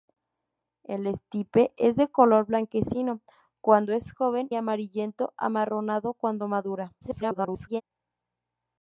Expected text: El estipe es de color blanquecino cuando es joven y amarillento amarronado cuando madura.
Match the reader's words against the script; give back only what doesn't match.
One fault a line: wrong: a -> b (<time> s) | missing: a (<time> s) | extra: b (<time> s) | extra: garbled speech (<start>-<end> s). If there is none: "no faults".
missing: y (4.5 s)
extra: garbled speech (7.0-7.8 s)